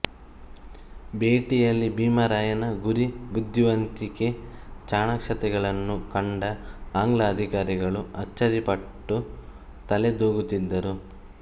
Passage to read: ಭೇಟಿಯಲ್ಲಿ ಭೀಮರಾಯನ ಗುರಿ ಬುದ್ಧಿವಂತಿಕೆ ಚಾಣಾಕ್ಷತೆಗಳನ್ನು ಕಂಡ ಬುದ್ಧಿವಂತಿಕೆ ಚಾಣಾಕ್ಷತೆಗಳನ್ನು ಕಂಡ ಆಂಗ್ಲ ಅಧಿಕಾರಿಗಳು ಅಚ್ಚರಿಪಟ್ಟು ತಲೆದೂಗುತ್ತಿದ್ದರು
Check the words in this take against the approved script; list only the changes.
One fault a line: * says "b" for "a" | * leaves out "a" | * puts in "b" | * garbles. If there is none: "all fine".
* leaves out "ಬುದ್ಧಿವಂತಿಕೆ ಚಾಣಾಕ್ಷತೆಗಳನ್ನು ಕಂಡ"